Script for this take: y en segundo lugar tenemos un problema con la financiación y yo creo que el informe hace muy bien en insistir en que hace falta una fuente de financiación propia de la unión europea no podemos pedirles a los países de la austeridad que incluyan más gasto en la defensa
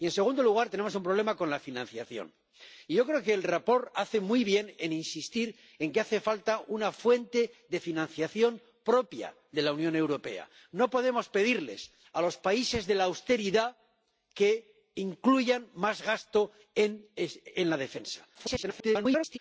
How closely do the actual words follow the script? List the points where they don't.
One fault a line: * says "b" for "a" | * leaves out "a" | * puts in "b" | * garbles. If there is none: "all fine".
* garbles